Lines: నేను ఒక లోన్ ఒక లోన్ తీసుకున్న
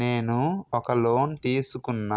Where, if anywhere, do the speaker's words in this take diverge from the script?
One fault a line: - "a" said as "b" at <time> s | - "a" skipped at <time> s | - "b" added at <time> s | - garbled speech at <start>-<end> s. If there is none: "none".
- "ఒక లోన్" skipped at 1.3 s